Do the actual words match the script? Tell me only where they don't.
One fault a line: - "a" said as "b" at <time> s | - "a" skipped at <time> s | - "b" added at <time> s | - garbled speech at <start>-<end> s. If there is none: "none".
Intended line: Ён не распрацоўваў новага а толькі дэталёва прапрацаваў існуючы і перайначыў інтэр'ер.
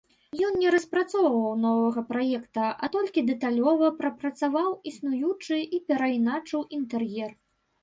- "праекта" added at 2.1 s